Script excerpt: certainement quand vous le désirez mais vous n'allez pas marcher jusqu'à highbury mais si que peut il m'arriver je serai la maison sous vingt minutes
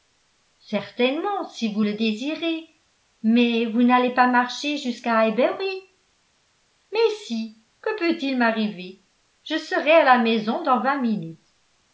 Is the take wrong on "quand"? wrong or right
wrong